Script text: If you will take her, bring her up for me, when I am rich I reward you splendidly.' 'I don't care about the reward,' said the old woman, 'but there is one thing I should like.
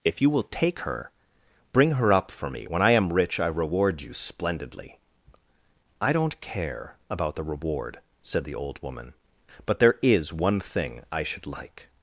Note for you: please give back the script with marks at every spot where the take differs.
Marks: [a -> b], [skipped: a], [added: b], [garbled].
If you will take her, bring her up for me, when I am rich I reward you splendidly.' 'I don't care about the reward,' said the old woman, 'but there is one thing I should like.